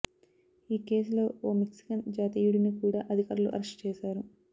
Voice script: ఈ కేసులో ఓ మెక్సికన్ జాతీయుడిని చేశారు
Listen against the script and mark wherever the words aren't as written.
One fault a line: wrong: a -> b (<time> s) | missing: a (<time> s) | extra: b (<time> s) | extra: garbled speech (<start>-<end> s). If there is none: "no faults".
extra: కూడా అధికారులు అరెస్ట్ (2.8 s)